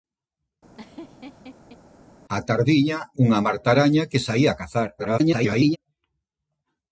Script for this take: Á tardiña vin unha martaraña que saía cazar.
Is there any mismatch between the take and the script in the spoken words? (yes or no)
yes